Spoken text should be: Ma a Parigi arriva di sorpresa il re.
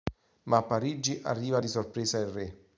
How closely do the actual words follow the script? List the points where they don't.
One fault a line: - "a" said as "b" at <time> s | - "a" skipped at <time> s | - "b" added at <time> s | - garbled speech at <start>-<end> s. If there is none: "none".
none